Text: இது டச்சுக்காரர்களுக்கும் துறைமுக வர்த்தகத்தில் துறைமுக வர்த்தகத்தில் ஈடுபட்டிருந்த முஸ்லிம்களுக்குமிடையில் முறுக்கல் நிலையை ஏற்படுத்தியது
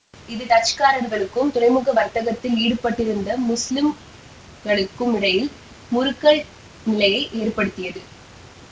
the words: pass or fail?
fail